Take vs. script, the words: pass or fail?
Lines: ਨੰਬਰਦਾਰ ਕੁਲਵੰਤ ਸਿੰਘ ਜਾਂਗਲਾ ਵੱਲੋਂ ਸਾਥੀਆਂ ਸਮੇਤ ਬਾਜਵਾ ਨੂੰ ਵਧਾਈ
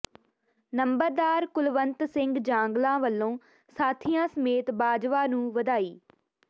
pass